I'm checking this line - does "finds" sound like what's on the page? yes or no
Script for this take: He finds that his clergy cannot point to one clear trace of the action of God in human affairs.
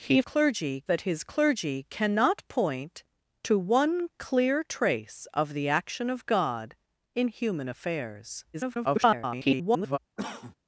no